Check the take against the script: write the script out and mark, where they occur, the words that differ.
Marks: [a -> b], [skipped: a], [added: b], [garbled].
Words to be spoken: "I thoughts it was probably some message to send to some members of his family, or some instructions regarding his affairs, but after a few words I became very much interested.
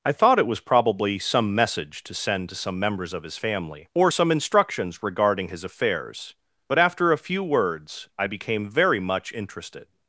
"I [thoughts -> thought] it was probably some message to send to some members of his family, or some instructions regarding his affairs, but after a few words I became very much interested.